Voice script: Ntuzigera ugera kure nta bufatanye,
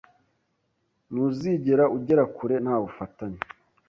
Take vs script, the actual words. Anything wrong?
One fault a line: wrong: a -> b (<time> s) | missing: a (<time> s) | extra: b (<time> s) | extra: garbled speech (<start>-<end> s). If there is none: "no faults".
no faults